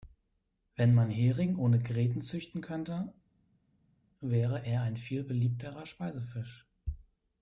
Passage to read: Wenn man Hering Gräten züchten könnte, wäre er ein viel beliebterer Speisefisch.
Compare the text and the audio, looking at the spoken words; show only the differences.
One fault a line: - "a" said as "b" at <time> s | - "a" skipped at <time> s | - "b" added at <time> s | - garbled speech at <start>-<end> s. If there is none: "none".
- "ohne" added at 1.6 s